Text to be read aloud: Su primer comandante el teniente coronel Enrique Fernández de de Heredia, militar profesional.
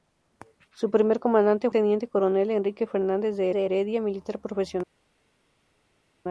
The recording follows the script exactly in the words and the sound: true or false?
true